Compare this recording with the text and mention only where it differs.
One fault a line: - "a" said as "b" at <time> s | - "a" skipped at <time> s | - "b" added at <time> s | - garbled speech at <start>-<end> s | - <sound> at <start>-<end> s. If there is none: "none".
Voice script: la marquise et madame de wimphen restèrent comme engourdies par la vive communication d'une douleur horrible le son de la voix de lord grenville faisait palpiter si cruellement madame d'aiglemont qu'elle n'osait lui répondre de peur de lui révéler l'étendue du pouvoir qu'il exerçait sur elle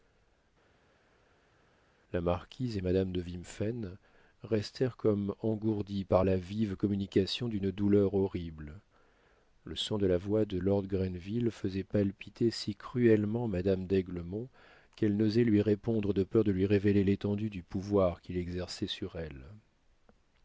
none